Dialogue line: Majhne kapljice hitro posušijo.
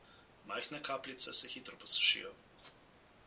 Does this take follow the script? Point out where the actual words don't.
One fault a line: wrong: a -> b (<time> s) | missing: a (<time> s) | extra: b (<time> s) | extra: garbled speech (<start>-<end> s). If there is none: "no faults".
extra: se (1.3 s)